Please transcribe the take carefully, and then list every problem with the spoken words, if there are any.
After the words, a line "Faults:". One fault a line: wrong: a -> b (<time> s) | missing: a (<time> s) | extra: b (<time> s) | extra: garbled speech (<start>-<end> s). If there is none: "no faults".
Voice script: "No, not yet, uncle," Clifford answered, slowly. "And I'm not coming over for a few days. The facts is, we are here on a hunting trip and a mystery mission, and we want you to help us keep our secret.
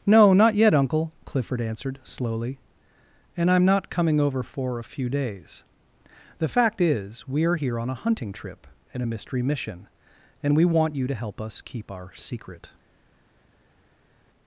"No, not yet, uncle," Clifford answered, slowly. "And I'm not coming over for a few days. The fact is, we are here on a hunting trip and a mystery mission, and we want you to help us keep our secret.
Faults:
wrong: facts -> fact (6.5 s)